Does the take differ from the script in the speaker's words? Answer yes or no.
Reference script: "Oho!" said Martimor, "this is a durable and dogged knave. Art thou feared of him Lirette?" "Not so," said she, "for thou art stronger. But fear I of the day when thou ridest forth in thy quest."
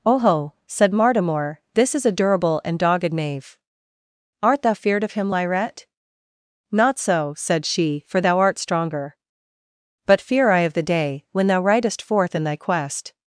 no